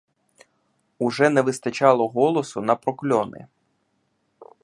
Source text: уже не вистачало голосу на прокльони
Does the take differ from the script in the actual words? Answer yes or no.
no